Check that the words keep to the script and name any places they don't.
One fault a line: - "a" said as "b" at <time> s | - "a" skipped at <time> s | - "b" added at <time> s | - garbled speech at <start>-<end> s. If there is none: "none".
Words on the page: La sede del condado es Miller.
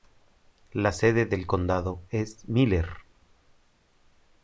none